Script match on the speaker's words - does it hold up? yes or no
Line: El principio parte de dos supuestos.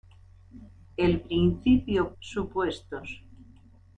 no